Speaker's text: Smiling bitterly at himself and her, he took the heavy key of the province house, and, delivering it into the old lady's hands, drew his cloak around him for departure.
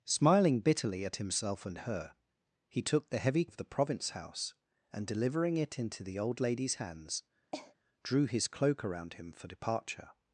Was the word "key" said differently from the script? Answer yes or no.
yes